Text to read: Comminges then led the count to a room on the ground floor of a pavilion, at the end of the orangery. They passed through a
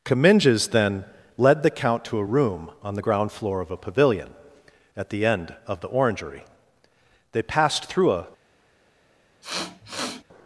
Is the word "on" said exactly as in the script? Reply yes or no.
yes